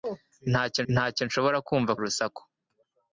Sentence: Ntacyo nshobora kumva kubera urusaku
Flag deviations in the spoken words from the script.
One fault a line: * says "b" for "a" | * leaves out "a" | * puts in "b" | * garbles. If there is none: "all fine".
* puts in "ntacyo"
* leaves out "kubera"